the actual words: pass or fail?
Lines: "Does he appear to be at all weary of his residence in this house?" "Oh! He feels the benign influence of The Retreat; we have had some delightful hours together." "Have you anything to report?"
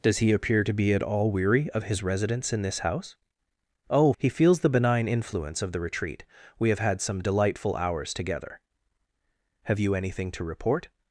pass